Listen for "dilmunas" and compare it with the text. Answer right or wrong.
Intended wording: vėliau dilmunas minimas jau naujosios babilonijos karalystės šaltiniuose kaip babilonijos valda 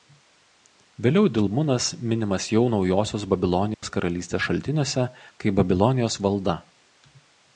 right